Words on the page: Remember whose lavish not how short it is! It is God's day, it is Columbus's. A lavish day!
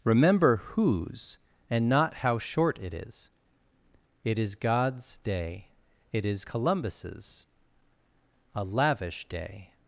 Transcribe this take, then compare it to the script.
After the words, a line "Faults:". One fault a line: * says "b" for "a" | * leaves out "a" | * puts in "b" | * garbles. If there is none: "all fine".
Remember whose and not how short it is! It is God's day, it is Columbus's. A lavish day!
Faults:
* says "and" for "lavish"